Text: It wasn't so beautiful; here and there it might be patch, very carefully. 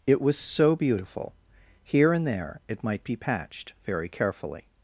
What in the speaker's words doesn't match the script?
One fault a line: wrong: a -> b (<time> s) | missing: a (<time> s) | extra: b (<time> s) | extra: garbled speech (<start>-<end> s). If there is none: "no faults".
wrong: wasn't -> was (0.2 s)
wrong: patch -> patched (3.2 s)